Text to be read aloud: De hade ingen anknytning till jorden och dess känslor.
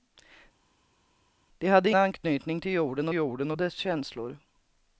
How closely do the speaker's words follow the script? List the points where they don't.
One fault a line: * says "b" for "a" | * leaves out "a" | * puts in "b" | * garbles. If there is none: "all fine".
* leaves out "ingen"
* puts in "jorden"